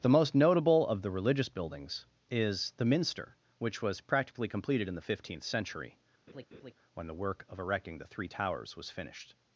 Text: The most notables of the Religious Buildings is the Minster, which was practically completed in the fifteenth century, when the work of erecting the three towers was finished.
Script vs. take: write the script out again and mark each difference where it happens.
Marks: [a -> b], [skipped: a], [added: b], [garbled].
The most [notables -> notable] of the Religious Buildings is the Minster, which was practically completed in the fifteenth century, when the work of erecting the three towers was finished.